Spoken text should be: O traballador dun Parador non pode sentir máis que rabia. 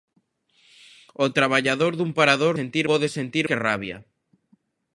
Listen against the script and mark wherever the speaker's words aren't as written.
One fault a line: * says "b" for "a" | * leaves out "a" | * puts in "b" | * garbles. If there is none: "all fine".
* says "sentir" for "non"
* leaves out "máis"